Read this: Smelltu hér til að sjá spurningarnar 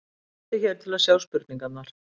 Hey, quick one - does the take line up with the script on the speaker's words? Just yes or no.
yes